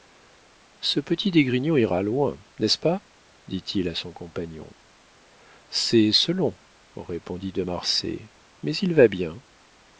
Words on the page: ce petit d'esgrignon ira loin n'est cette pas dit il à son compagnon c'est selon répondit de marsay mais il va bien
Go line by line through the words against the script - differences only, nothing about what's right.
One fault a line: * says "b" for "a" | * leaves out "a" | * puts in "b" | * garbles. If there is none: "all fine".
* says "ce" for "cette"